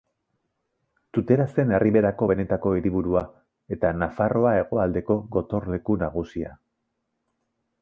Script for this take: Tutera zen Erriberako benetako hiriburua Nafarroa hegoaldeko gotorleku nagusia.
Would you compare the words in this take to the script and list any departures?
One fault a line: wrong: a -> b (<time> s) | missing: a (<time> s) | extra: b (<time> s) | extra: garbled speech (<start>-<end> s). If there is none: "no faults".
extra: eta (3.8 s)